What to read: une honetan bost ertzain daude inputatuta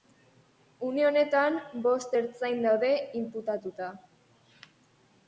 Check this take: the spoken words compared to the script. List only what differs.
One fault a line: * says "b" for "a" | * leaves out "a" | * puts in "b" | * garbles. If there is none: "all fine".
all fine